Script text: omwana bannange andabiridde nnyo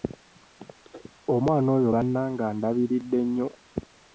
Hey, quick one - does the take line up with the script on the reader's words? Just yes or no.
no